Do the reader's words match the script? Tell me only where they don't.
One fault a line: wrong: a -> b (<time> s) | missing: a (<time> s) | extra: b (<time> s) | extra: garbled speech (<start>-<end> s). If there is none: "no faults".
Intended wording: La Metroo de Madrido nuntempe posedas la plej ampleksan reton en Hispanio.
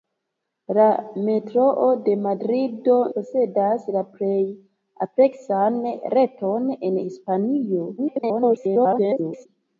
missing: nuntempe (3.0 s)
extra: garbled speech (8.0-9.5 s)